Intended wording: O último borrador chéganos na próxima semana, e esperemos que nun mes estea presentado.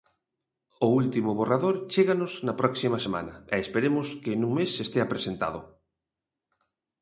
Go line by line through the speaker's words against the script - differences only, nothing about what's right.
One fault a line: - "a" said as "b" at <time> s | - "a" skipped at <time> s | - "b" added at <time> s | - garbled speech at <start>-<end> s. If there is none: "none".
none